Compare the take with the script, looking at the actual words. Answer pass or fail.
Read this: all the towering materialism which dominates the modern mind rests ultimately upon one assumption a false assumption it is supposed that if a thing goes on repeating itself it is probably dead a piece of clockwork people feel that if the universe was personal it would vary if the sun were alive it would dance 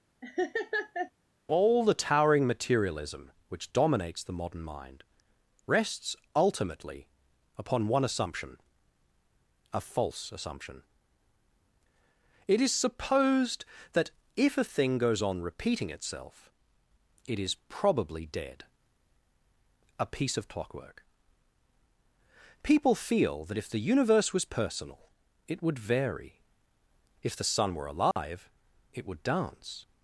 pass